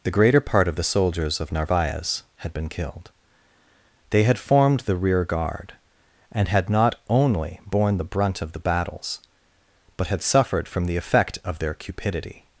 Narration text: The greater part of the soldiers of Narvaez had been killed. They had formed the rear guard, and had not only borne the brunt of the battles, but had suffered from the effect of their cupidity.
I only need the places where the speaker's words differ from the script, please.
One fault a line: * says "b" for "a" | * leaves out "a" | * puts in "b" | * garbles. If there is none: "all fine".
all fine